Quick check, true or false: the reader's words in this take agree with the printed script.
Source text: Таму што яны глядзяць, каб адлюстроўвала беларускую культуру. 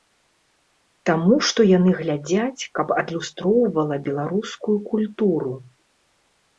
true